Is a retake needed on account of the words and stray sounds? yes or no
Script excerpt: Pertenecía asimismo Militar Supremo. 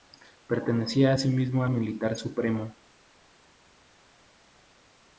no